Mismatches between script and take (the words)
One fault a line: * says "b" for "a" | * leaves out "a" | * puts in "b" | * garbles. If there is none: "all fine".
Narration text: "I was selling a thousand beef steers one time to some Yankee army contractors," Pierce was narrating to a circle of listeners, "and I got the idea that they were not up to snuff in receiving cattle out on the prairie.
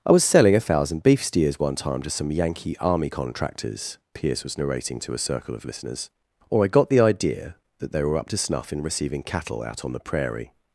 * says "or" for "and"
* leaves out "not"